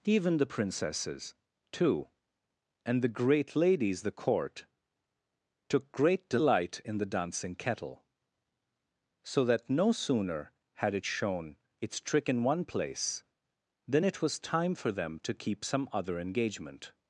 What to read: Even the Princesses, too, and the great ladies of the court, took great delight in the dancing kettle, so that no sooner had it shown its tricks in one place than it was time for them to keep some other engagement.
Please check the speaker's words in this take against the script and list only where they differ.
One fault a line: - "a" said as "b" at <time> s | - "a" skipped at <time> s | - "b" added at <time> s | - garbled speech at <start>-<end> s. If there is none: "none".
- "of" skipped at 4.0 s
- "tricks" said as "trick" at 12.0 s